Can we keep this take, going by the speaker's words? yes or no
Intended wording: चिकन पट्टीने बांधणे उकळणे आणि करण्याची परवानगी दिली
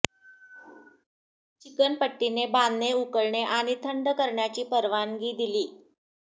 no